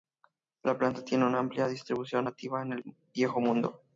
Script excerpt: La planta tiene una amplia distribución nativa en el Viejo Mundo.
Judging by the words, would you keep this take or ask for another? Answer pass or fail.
pass